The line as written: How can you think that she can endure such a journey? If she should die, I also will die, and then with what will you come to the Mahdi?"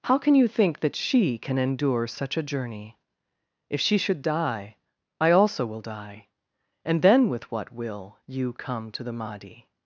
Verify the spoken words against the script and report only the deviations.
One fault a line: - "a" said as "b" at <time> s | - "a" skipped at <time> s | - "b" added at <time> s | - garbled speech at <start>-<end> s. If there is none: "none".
none